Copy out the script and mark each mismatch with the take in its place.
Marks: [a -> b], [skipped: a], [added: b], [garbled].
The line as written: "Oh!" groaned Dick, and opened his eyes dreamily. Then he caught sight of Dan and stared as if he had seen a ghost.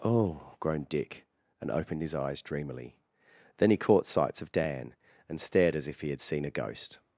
"Oh!" groaned Dick, and opened his eyes dreamily. Then he caught [sight -> sights] of Dan and stared as if he had seen a ghost.